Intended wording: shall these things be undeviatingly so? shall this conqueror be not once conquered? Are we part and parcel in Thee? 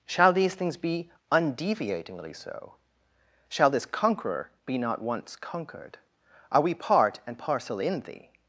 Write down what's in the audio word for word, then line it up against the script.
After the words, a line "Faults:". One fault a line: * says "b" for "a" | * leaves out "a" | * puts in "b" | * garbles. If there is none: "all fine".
shall these things be undeviatingly so? shall this conqueror be not once conquered? Are we part and parcel in Thee?
Faults:
all fine